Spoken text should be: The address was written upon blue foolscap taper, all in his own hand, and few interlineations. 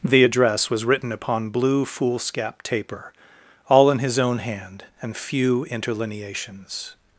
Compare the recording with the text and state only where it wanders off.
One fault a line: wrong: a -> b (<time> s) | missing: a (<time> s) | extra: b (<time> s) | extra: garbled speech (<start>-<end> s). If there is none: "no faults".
no faults